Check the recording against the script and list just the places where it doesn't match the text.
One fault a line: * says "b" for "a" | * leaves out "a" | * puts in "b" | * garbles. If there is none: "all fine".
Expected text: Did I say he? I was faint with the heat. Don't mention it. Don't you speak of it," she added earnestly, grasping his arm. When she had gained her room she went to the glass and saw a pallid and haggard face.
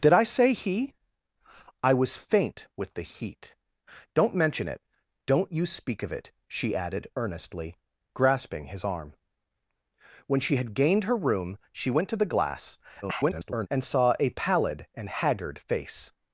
* garbles